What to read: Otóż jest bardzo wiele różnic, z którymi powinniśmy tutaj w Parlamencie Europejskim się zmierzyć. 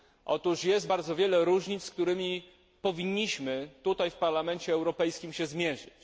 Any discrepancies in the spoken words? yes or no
no